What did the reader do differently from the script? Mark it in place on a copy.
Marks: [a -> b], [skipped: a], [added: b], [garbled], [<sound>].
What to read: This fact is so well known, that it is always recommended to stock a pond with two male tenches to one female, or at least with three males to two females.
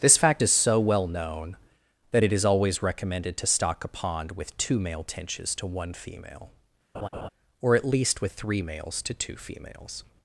This fact is so well known, that it is always recommended to stock a pond with two male tenches to one female, [laugh] or at least with three males to two females.